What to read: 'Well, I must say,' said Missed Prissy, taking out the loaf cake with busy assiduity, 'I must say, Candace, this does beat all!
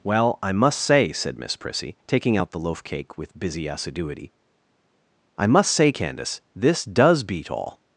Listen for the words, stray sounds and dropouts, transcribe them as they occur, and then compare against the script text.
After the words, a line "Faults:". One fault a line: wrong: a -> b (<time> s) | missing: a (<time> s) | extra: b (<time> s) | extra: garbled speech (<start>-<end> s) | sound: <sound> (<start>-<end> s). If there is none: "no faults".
'Well, I must say,' said Miss Prissy, taking out the loaf cake with busy assiduity, 'I must say, Candace, this does beat all!
Faults:
wrong: Missed -> Miss (1.4 s)